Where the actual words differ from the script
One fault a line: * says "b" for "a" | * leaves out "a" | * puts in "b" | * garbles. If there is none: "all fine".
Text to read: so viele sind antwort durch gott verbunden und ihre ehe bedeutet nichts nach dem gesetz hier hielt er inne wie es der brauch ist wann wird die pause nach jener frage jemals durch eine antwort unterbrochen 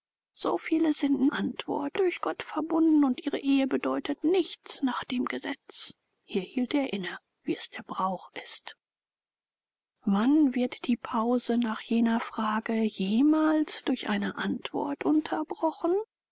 all fine